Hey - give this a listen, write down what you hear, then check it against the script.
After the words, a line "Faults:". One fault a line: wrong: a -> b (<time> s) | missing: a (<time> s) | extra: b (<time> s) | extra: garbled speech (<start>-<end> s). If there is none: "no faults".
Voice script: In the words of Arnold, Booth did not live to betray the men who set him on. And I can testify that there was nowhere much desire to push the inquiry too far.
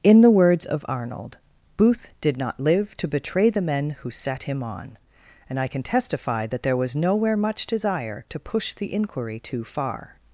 In the words of Arnold, Booth did not live to betray the men who set him on. And I can testify that there was nowhere much desire to push the inquiry too far.
Faults:
no faults